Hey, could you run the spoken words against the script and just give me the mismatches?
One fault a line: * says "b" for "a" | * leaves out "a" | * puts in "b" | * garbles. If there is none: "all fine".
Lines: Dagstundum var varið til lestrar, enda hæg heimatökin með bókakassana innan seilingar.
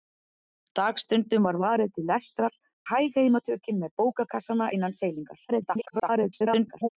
* leaves out "enda"
* garbles